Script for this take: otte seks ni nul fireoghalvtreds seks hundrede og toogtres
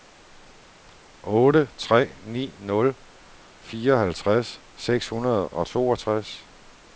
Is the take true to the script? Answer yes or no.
no